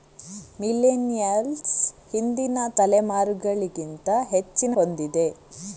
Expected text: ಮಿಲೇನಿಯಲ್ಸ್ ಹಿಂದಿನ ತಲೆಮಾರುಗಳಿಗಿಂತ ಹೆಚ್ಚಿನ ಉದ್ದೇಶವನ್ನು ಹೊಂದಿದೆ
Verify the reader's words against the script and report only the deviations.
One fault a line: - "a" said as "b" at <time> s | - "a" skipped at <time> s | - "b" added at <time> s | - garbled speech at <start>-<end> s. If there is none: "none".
- "ಉದ್ದೇಶವನ್ನು" skipped at 4.7 s